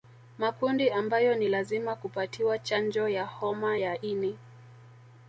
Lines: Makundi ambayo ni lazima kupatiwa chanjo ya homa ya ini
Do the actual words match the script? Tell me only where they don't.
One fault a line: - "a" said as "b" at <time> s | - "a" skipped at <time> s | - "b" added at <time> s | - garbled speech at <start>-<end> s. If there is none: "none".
none